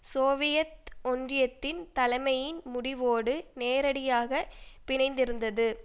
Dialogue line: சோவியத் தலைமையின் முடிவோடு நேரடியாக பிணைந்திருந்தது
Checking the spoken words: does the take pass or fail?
fail